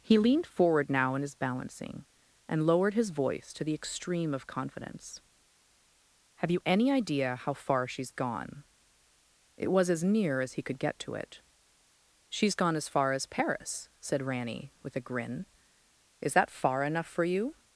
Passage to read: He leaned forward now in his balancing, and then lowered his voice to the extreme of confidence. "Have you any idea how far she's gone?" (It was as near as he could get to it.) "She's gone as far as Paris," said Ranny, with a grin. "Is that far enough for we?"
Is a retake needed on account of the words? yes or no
yes